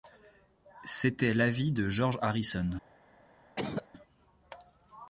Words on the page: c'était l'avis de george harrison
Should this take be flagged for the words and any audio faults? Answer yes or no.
yes